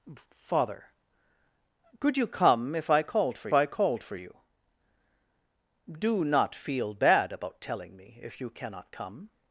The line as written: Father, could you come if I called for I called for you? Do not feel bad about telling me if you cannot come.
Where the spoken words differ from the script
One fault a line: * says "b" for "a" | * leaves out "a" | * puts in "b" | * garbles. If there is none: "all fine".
all fine